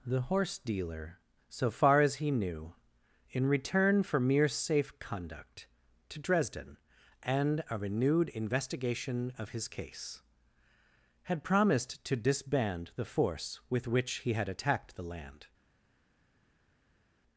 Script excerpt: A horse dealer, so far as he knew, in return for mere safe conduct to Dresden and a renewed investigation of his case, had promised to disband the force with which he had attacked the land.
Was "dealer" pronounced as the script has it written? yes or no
yes